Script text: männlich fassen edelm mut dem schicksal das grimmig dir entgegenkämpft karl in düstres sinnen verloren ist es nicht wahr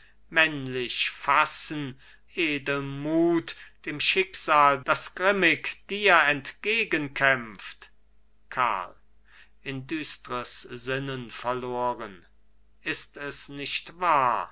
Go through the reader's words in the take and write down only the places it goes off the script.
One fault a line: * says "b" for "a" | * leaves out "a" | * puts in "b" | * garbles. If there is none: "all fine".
all fine